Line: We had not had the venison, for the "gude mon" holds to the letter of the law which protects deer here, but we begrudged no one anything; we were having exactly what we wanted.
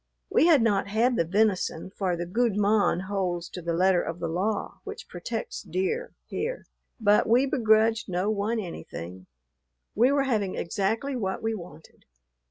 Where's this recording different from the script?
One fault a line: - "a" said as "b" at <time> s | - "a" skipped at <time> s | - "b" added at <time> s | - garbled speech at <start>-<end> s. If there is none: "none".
none